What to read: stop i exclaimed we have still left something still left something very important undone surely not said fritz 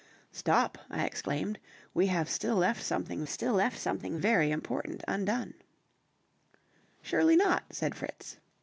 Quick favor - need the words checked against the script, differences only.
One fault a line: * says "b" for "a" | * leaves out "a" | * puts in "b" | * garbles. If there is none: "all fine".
all fine